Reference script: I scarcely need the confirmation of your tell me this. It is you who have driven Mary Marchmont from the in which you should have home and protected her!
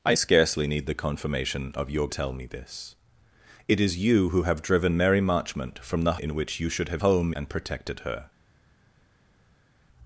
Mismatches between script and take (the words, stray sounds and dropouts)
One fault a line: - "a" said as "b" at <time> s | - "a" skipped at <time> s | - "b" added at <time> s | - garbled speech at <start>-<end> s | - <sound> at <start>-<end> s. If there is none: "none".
none